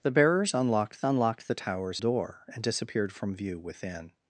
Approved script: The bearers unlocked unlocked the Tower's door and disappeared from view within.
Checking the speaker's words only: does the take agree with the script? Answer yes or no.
yes